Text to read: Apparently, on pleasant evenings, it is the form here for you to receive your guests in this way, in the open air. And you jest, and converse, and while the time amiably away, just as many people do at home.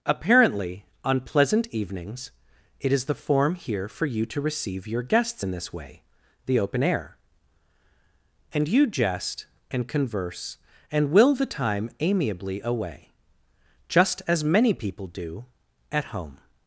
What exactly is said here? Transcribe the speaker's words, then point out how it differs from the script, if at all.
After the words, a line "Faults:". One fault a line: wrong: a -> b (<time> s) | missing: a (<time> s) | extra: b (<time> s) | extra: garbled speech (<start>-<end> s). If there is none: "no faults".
Apparently, on pleasant evenings, it is the form here for you to receive your guests in this way, the open air. And you jest, and converse, and will the time amiably away, just as many people do at home.
Faults:
missing: in (6.0 s)
wrong: while -> will (11.1 s)